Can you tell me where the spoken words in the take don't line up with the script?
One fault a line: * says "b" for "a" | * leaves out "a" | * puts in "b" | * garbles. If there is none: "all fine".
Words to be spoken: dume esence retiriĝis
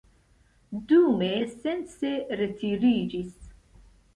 all fine